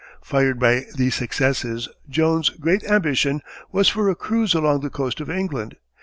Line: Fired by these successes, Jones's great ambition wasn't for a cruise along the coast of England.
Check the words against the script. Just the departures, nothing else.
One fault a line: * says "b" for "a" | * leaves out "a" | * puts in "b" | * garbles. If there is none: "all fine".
* says "was" for "wasn't"